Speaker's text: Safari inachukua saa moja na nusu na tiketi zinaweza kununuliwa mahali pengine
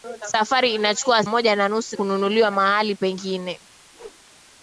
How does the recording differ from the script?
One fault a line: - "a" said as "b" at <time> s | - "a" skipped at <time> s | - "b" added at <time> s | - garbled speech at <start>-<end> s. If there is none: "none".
- "saa" skipped at 1.2 s
- "na tiketi zinaweza" skipped at 2.0 s